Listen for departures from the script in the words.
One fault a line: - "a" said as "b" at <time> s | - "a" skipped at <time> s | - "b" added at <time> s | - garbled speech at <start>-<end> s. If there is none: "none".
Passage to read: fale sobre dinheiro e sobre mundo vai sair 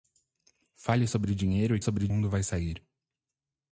none